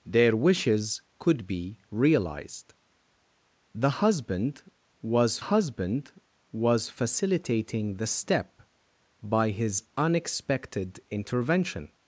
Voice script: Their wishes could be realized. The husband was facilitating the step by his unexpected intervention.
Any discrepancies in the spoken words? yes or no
yes